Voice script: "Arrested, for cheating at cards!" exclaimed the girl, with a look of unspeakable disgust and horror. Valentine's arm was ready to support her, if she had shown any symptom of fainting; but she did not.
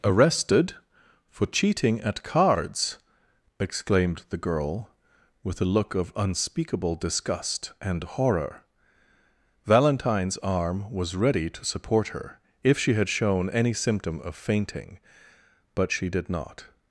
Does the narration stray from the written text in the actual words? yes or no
no